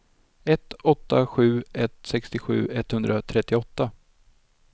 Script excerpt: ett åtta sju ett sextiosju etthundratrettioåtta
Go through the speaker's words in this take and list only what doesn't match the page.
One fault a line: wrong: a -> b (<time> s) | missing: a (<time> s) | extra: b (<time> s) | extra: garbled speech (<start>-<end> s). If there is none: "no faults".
no faults